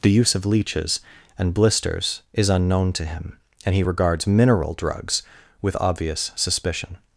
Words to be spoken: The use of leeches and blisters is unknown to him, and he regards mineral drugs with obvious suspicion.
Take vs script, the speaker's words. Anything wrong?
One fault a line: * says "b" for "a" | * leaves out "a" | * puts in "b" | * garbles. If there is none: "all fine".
all fine